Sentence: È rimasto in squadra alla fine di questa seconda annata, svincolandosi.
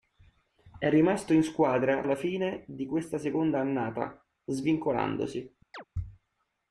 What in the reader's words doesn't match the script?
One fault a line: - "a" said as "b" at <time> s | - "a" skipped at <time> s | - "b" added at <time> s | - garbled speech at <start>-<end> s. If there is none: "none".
none